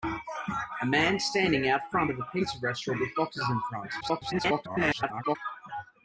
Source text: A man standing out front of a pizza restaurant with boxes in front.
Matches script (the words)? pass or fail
fail